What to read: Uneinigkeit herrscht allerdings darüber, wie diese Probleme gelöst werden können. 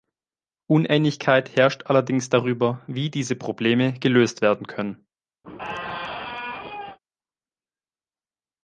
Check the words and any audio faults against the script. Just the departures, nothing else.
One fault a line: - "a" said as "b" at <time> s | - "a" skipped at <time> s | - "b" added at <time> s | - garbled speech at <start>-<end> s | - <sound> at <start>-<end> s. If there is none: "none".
- squeak at 5.4-7.0 s